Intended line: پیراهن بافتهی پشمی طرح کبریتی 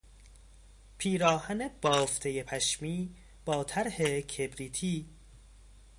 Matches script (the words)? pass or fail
fail